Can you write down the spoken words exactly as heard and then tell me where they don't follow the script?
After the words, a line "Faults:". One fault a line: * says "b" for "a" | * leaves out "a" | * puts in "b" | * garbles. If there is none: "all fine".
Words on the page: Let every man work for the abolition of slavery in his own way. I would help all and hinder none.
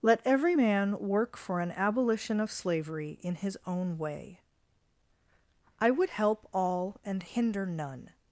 Let every man work for an abolition of slavery in his own way. I would help all and hinder none.
Faults:
* says "an" for "the"